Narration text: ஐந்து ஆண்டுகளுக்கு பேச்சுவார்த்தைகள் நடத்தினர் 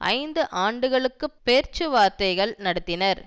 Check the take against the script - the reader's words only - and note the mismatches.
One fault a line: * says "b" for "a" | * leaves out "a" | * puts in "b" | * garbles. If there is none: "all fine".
all fine